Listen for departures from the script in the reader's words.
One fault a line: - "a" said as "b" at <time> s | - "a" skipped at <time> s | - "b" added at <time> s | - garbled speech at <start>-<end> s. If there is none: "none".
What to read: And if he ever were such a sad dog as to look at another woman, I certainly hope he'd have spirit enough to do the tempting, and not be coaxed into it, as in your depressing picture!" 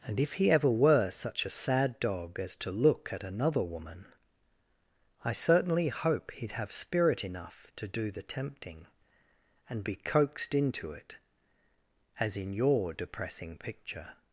- "not" skipped at 9.8 s